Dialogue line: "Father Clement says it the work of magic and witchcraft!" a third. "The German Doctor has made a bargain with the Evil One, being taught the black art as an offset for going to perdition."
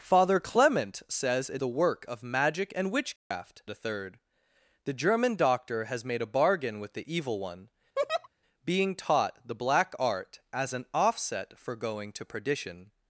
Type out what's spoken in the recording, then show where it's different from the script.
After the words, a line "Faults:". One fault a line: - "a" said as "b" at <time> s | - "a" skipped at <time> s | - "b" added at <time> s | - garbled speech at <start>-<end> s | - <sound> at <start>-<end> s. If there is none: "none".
"Father Clement says it the work of magic and witchcraft!" a third. "The German Doctor has made a bargain with the Evil One, being taught the black art as an offset for going to perdition."
Faults:
- dropout at 3.2-3.3 s
- laugh at 8.0-8.3 s